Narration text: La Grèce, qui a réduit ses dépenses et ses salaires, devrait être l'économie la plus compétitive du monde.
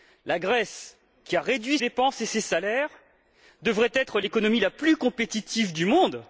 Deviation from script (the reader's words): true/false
true